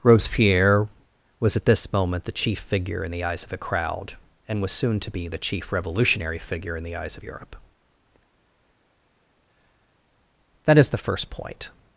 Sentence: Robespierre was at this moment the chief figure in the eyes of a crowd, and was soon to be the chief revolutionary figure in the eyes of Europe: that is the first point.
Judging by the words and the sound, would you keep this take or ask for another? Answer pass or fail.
pass